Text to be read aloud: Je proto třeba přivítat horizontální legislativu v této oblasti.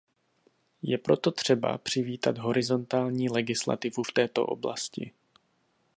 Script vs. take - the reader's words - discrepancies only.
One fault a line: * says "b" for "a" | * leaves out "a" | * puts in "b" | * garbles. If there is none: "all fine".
all fine